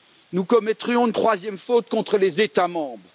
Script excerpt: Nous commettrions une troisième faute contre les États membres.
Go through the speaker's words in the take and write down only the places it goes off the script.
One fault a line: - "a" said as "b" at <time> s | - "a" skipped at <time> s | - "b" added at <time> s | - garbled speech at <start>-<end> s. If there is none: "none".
none